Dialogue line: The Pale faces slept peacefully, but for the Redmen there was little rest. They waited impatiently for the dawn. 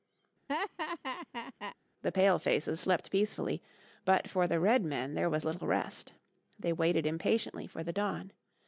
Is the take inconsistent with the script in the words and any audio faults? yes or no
yes